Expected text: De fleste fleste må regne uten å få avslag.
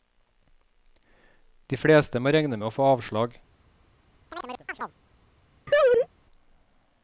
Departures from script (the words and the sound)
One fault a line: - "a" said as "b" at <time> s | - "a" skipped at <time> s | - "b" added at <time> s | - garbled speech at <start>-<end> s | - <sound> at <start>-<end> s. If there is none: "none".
- "fleste" skipped at 2.2 s
- "uten" said as "med" at 2.6 s
- chirp at 4.3-5.0 s
- laugh at 5.7-6.1 s